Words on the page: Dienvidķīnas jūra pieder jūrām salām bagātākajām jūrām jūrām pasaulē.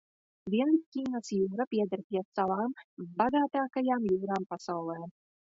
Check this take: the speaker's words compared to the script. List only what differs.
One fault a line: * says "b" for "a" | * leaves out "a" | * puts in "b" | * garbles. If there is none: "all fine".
* says "pie" for "jūrām"
* leaves out "jūrām"